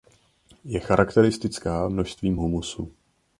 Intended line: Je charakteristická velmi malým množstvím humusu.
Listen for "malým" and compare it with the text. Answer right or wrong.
wrong